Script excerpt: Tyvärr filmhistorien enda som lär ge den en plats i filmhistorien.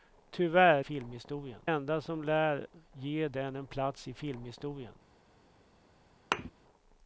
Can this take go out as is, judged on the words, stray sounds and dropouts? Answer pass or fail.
fail